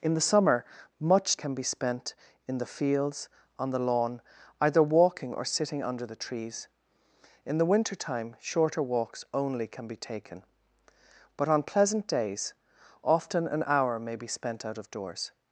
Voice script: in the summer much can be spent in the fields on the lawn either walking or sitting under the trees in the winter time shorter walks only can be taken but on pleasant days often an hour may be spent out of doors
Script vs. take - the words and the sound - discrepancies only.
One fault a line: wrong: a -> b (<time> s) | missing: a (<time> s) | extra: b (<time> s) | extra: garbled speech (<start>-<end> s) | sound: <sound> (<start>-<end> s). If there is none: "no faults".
no faults